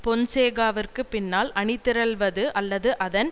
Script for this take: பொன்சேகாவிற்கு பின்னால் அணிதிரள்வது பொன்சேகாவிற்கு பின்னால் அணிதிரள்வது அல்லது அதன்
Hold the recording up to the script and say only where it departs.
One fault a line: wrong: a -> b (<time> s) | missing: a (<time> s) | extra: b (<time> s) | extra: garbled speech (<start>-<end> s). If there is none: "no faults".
missing: பொன்சேகாவிற்கு பின்னால் அணிதிரள்வது (2.4 s)